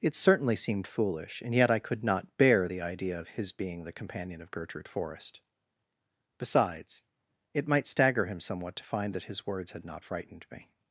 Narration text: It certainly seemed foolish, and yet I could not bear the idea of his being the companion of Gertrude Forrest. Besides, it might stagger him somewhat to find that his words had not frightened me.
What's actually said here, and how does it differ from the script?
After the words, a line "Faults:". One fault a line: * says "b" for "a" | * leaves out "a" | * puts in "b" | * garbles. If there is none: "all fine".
It certainly seemed foolish, and yet I could not bear the idea of his being the companion of Gertrude Forrest. Besides, it might stagger him somewhat to find that his words had not frightened me.
Faults:
all fine